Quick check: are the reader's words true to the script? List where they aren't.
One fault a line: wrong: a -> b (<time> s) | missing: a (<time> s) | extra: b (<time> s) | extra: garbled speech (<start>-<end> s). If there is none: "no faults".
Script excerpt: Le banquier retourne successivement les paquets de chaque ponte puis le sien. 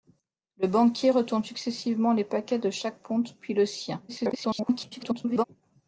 extra: garbled speech (4.1-5.4 s)